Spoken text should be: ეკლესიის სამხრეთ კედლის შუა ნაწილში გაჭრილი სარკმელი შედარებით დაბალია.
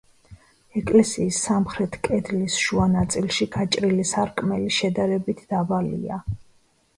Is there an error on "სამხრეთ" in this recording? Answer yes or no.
no